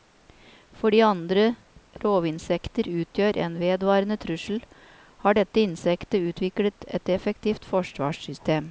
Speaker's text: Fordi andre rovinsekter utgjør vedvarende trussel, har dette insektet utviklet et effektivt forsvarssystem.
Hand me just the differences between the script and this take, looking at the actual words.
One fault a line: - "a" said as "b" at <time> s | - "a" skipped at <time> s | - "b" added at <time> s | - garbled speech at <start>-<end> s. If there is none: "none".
- "en" added at 3.5 s